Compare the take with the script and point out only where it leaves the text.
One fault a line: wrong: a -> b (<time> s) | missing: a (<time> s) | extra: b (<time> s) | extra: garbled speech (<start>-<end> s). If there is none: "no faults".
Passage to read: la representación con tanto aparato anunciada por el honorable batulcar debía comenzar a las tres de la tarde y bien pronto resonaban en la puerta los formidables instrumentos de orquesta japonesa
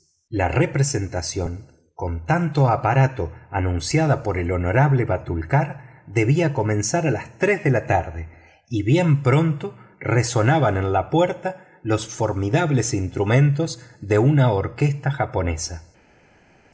extra: una (14.2 s)